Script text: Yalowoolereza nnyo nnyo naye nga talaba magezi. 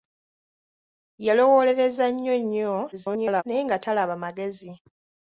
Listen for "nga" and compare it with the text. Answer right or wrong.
right